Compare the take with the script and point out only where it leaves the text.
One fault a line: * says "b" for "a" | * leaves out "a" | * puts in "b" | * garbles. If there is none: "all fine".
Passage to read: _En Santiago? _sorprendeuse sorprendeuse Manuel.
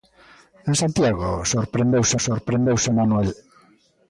all fine